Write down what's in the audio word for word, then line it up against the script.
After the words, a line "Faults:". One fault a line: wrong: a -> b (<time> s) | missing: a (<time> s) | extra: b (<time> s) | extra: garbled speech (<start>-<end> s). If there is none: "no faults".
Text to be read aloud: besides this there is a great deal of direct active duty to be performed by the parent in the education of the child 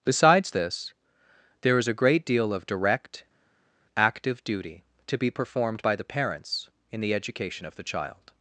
besides this there is a great deal of direct active duty to be performed by the parents in the education of the child
Faults:
wrong: parent -> parents (6.0 s)